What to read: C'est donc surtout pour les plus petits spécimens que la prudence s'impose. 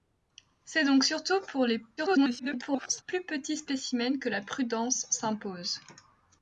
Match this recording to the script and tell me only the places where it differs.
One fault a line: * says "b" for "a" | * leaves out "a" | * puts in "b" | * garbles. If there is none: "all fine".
* garbles